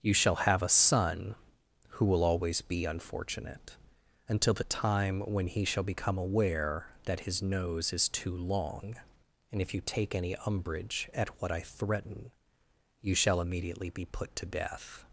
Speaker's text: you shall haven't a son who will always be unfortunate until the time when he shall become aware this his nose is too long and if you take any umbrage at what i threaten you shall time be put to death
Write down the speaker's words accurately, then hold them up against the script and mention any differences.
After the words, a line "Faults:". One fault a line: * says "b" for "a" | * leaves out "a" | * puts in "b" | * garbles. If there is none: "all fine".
you shall have a son who will always be unfortunate until the time when he shall become aware that his nose is too long and if you take any umbrage at what i threaten you shall immediately be put to death
Faults:
* says "have" for "haven't"
* says "that" for "this"
* says "immediately" for "time"